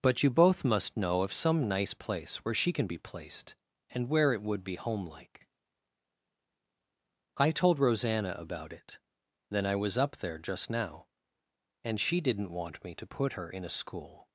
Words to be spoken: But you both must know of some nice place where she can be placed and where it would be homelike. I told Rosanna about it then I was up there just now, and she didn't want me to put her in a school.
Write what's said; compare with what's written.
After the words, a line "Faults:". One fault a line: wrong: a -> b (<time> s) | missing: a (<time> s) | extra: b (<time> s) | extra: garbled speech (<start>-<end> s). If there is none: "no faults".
But you both must know of some nice place where she can be placed and where it would be homelike. I told Rosanna about it then I was up there just now, and she didn't want me to put her in a school.
Faults:
no faults